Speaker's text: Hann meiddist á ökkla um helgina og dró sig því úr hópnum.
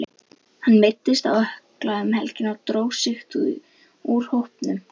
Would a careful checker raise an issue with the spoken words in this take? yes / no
no